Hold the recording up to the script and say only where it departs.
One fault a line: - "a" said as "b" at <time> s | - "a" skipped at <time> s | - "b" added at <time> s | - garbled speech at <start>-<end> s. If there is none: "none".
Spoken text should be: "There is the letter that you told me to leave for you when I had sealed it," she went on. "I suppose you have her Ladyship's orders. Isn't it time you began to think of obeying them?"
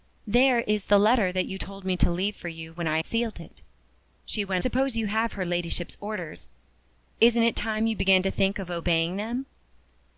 - "had" skipped at 3.0 s
- "on I" skipped at 4.6 s